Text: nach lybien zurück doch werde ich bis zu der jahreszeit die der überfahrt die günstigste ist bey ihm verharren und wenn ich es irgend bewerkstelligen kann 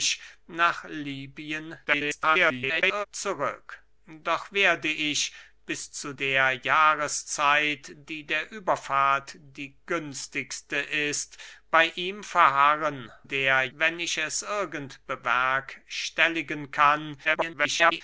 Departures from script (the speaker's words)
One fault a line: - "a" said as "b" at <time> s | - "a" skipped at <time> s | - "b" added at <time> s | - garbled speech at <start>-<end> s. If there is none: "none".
- garbled speech at 1.9-3.1 s
- "und" said as "der" at 13.2 s
- garbled speech at 17.2-18.0 s